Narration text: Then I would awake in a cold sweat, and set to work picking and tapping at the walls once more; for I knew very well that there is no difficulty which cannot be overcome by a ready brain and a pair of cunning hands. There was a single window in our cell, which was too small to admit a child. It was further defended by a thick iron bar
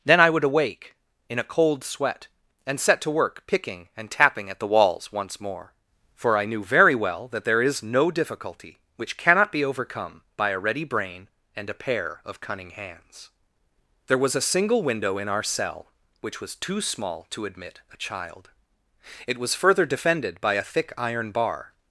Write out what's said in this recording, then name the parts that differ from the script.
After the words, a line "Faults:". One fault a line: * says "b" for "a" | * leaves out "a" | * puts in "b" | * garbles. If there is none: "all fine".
Then I would awake in a cold sweat, and set to work picking and tapping at the walls once more; for I knew very well that there is no difficulty which cannot be overcome by a ready brain and a pair of cunning hands. There was a single window in our cell, which was too small to admit a child. It was further defended by a thick iron bar
Faults:
all fine